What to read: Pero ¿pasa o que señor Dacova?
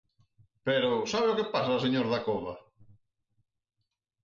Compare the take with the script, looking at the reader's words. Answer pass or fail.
fail